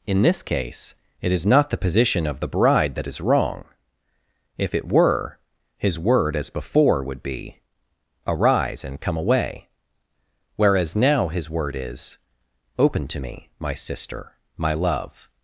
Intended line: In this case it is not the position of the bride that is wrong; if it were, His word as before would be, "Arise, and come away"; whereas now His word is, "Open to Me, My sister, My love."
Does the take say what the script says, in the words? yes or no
yes